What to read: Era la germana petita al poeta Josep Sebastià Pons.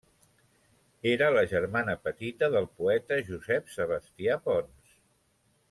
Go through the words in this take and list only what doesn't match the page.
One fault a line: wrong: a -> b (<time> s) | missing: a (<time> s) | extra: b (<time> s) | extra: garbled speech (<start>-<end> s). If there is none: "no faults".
wrong: al -> del (2.5 s)